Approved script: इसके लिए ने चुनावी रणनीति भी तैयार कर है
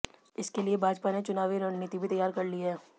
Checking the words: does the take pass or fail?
fail